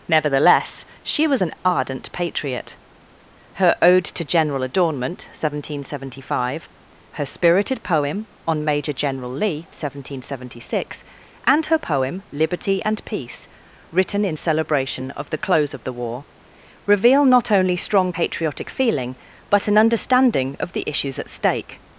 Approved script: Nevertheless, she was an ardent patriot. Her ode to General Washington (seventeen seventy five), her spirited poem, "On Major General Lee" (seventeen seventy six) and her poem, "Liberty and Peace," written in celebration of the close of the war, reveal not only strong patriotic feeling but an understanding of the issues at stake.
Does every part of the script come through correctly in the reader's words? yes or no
no